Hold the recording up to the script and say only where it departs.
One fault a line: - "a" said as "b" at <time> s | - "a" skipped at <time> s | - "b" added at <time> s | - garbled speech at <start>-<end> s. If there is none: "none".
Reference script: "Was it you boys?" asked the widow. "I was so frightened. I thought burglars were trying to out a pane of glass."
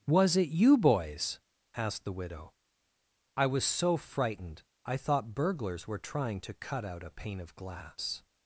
- "cut" added at 6.5 s